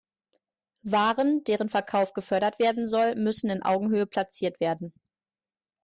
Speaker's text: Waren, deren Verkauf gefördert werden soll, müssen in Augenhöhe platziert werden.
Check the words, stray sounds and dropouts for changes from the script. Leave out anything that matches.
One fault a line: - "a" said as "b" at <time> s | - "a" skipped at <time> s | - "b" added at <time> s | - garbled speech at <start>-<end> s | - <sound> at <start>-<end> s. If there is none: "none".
none